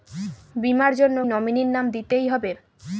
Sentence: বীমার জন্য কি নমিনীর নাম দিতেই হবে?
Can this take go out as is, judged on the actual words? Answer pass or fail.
fail